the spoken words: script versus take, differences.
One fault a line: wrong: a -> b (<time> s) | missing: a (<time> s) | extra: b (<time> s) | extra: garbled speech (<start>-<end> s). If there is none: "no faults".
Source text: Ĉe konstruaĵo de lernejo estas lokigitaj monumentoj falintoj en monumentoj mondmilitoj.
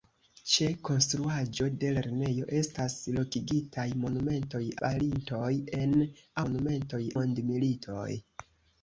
no faults